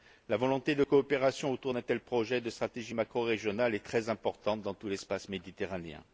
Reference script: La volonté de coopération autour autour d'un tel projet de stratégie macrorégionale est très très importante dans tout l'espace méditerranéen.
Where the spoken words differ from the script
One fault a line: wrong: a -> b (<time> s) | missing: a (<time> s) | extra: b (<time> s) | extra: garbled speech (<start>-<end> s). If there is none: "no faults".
missing: autour (1.7 s)
missing: très (4.1 s)